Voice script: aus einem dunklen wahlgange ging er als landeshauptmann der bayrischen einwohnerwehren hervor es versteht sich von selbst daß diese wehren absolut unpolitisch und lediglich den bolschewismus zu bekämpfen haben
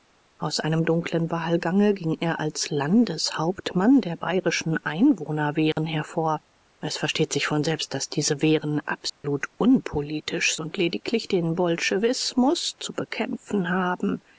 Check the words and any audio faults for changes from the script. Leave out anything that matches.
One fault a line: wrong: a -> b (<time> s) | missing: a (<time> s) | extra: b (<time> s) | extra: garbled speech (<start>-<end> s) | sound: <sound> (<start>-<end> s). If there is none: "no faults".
sound: dropout (5.7-5.8 s)
sound: dropout (9.1-9.2 s)